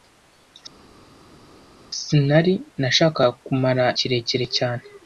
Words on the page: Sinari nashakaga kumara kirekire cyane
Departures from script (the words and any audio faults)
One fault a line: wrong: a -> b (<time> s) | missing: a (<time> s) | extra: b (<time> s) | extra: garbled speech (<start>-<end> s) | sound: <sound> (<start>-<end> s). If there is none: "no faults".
no faults